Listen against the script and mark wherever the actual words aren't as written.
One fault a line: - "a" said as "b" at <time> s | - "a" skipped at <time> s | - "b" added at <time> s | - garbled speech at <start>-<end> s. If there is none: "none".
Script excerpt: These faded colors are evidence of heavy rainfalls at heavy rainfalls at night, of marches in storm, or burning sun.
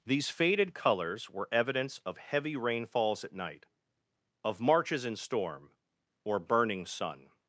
- "are" said as "were" at 1.3 s
- "heavy rainfalls at" skipped at 3.3 s